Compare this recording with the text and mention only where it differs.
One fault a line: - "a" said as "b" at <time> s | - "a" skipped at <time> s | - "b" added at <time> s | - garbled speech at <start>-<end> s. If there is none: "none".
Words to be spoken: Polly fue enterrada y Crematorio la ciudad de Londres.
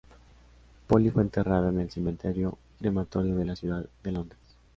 - "en el Cementerio" added at 1.7 s
- "de" added at 3.4 s